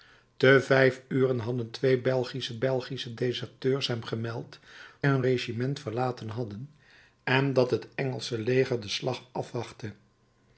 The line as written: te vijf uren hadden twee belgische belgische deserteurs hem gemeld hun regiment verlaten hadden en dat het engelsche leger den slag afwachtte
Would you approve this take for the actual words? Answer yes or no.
yes